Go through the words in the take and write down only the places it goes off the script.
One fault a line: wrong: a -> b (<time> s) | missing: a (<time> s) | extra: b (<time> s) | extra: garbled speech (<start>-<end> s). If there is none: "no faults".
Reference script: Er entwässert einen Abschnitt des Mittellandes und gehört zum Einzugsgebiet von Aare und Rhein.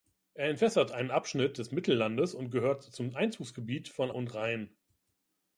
missing: Aare (4.1 s)